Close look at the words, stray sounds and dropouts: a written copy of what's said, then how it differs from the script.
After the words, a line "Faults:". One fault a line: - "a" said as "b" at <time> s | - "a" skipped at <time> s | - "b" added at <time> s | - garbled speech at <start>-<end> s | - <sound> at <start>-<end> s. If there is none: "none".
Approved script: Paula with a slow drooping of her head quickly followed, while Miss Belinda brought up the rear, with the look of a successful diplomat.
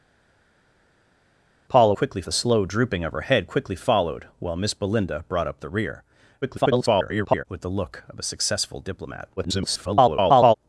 Paula quickly a slow drooping of her head quickly followed, while Miss Belinda brought up the rear, [garbled] with the look of a successful diplomat. [garbled]
Faults:
- "with" said as "quickly" at 1.9 s
- garbled speech at 6.4-7.4 s
- garbled speech at 9.4-10.5 s